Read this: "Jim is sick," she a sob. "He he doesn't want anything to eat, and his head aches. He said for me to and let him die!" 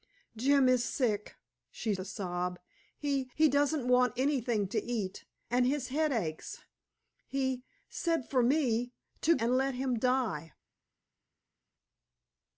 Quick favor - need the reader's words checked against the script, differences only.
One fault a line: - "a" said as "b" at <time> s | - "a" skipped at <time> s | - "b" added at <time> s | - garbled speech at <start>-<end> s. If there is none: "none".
none